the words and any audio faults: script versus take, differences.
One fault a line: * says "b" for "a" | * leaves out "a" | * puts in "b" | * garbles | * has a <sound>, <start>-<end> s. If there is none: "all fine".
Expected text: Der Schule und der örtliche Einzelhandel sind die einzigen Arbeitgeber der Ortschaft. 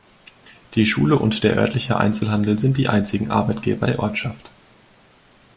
* says "Die" for "Der"